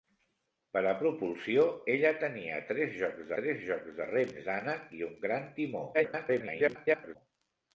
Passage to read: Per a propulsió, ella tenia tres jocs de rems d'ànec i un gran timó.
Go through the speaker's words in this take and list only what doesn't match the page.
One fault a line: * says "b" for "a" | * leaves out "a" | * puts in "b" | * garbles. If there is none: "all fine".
* puts in "tres jocs"
* garbles